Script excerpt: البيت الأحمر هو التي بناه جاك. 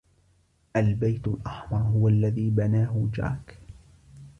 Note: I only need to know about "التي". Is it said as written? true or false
false